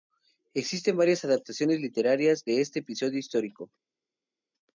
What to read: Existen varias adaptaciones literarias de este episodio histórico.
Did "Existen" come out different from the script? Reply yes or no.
no